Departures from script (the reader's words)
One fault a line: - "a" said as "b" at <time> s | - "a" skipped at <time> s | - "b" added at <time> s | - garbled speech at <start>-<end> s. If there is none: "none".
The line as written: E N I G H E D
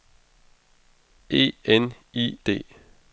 - "G H E" skipped at 2.4 s